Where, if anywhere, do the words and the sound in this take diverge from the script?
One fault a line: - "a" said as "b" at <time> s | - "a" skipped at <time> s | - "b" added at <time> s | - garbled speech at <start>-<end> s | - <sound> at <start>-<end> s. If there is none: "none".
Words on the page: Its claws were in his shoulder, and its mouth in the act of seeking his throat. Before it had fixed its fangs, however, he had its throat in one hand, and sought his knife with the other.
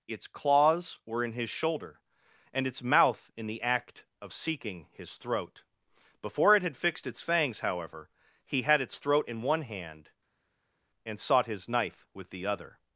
none